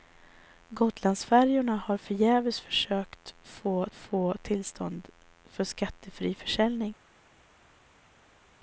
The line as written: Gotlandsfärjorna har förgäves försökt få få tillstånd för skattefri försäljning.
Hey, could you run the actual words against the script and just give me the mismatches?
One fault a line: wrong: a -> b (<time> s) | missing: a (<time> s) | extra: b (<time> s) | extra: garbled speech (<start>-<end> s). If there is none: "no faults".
no faults